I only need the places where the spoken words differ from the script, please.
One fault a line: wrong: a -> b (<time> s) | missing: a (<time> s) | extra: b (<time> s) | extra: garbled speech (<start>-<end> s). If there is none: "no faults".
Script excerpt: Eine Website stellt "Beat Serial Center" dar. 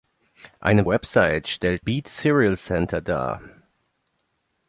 no faults